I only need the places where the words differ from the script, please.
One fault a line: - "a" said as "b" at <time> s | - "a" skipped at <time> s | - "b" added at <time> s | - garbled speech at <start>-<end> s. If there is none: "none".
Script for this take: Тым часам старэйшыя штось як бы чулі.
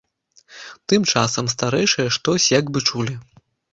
none